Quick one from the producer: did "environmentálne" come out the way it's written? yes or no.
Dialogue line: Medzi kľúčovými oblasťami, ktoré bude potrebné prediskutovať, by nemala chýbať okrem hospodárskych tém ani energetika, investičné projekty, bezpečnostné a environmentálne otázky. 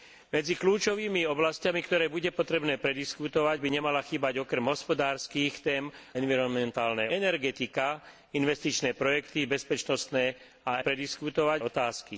no